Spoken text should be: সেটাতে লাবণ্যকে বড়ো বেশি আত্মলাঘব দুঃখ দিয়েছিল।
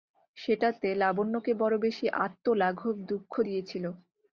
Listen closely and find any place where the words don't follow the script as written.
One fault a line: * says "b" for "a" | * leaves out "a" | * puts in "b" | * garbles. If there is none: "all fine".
all fine